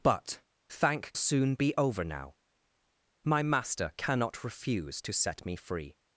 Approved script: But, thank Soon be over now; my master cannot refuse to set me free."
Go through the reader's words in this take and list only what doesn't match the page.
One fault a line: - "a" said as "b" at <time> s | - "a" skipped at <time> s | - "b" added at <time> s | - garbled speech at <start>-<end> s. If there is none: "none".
none